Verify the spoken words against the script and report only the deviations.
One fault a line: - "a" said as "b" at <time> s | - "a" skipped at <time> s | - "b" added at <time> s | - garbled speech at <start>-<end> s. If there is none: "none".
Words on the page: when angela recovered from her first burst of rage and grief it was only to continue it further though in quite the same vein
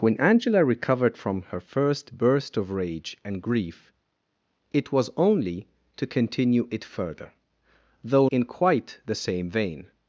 none